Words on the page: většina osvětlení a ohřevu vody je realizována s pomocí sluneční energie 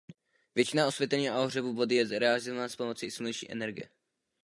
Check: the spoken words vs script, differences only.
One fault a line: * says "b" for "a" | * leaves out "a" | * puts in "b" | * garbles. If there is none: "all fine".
all fine